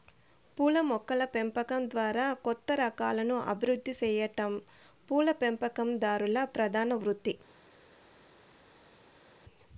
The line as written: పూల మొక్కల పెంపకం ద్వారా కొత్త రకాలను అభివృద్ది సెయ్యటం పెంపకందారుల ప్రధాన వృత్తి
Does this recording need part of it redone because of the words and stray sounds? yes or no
yes